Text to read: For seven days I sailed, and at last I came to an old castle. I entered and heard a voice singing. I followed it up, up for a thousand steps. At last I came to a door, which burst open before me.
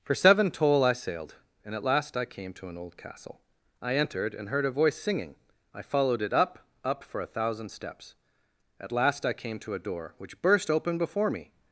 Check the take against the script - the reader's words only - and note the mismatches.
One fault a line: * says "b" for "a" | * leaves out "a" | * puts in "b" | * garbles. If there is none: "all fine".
* says "toll" for "days"